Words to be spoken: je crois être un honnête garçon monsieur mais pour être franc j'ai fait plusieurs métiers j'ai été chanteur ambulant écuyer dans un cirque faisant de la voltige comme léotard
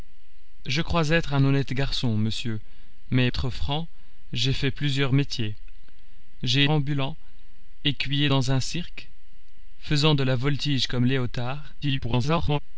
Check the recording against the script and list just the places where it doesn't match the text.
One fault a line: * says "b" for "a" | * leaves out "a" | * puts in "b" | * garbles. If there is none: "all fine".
* leaves out "pour"
* leaves out "été chanteur"
* garbles